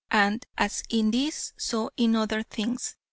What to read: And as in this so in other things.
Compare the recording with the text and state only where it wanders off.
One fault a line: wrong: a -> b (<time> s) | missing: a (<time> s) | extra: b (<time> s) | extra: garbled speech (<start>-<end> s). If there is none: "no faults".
no faults